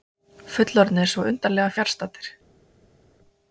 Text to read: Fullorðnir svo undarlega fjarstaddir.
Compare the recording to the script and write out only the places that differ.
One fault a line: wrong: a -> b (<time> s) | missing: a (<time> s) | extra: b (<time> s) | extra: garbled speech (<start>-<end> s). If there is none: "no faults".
no faults